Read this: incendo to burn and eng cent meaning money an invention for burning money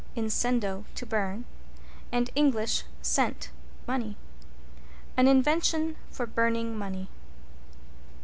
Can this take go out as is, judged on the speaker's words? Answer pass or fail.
fail